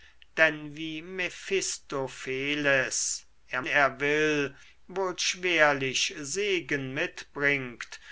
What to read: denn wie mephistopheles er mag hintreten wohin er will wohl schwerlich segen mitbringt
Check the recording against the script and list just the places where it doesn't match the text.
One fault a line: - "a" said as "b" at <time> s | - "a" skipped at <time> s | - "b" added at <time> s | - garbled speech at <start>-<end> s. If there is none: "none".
- "mag hintreten wohin" skipped at 3.6 s